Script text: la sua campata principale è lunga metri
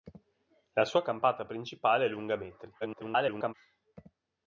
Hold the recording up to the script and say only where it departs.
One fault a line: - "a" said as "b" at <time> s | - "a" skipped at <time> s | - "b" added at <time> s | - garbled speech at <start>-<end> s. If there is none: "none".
- garbled speech at 2.8-3.5 s